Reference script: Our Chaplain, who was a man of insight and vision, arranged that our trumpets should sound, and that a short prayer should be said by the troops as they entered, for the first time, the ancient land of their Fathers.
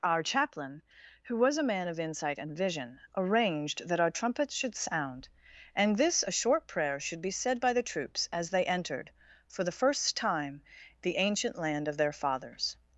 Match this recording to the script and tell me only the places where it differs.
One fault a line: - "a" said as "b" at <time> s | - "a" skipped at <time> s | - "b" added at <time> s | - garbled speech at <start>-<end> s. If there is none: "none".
- "that" said as "this" at 6.0 s